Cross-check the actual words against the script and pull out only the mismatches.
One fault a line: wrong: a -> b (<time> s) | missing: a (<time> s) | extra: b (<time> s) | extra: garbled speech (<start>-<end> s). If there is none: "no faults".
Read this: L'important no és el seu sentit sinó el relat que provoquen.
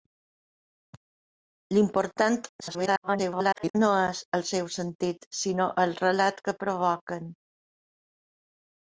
extra: garbled speech (2.6-3.8 s)